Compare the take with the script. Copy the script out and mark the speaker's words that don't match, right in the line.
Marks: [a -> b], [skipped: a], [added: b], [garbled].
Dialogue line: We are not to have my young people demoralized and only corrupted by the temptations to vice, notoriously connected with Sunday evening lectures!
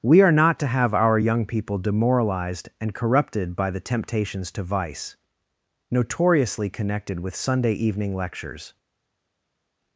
We are not to have [my -> our] young people demoralized and [skipped: only] corrupted by the temptations to vice, notoriously connected with Sunday evening lectures!